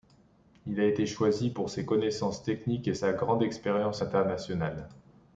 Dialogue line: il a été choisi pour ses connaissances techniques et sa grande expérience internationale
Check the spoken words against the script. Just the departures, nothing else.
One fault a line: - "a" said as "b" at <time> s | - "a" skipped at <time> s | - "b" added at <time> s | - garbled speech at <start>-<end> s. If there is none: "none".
none